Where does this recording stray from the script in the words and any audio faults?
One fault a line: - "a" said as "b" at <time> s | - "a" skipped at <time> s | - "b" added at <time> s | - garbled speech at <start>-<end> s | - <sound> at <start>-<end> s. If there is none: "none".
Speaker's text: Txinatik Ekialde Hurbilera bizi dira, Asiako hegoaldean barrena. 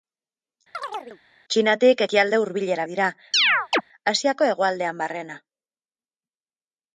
- chirp at 0.7-1.2 s
- "bizi" skipped at 2.9 s
- chirp at 3.3-3.8 s